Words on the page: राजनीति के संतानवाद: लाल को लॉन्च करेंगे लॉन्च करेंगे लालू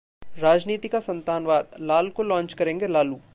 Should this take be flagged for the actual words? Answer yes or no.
yes